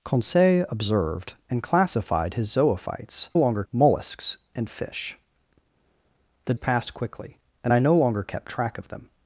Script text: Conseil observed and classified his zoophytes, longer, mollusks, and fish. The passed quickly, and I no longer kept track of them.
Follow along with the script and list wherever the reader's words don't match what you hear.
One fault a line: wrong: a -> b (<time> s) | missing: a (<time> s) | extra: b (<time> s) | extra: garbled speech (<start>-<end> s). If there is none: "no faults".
no faults